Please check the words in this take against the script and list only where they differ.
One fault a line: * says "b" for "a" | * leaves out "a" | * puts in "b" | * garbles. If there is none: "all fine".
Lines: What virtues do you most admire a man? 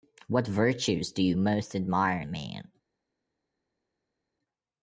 all fine